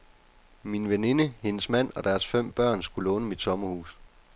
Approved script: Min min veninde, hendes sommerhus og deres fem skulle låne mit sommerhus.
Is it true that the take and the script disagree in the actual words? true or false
true